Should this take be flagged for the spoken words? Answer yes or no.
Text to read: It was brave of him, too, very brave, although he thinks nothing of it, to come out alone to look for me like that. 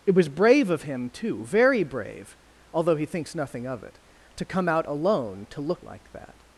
yes